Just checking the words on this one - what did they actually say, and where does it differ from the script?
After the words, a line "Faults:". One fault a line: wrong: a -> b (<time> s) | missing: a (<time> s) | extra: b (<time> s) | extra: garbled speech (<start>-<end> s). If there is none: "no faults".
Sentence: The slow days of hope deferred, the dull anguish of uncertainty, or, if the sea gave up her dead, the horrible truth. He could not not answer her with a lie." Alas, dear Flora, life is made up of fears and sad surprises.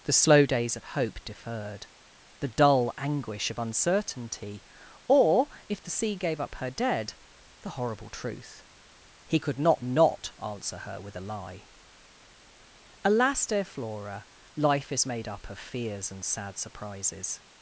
The slow days of hope deferred, the dull anguish of uncertainty, or, if the sea gave up her dead, the horrible truth. He could not not answer her with a lie." Alas, dear Flora, life is made up of fears and sad surprises.
Faults:
no faults